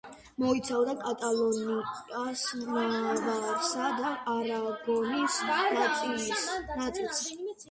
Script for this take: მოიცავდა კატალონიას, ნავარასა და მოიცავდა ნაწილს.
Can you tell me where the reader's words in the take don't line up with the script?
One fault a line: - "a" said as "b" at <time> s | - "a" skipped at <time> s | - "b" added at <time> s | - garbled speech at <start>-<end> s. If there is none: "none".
- "მოიცავდა" said as "არაგონის" at 4.3 s